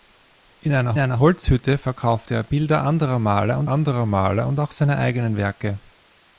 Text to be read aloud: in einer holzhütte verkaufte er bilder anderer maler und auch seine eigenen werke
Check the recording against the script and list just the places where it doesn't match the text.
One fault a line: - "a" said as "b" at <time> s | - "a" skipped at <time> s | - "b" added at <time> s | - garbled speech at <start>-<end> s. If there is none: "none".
- "einer" added at 1.0 s
- "anderer maler und" added at 3.7 s